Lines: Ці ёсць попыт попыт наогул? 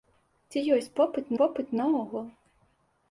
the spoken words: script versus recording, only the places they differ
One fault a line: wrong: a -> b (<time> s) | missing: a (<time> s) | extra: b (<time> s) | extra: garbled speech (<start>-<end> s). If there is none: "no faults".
no faults